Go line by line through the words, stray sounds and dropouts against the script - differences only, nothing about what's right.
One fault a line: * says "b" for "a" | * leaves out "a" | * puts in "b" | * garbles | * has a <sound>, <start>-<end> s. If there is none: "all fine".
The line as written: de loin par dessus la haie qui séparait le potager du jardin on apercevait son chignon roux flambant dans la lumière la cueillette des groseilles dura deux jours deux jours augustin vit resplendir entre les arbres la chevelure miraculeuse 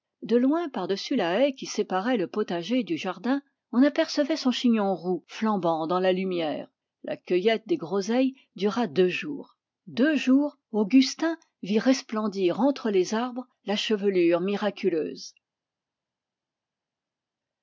all fine